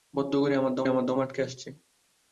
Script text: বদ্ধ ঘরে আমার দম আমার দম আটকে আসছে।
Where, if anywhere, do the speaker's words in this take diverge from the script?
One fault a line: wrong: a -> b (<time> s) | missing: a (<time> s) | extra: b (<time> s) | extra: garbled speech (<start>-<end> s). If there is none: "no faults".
no faults